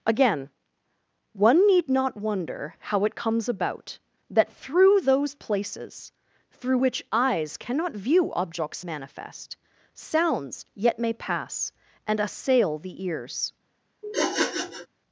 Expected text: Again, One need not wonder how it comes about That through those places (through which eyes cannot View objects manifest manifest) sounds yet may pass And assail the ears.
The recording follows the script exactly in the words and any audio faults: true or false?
false